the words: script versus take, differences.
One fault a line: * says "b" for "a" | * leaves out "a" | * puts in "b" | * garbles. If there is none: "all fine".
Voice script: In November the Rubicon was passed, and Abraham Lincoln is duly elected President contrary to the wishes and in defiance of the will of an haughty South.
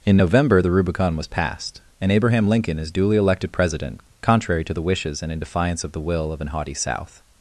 all fine